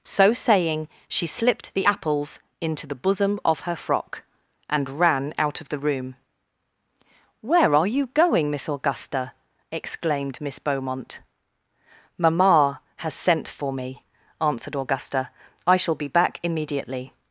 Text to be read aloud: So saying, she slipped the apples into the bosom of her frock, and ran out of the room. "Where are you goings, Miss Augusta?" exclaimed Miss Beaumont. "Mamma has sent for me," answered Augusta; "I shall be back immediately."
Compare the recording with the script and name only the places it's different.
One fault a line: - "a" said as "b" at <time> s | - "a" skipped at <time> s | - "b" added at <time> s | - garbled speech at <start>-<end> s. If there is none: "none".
- "goings" said as "going" at 8.1 s